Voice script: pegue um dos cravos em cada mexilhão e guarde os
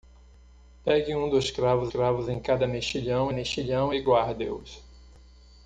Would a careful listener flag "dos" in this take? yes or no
no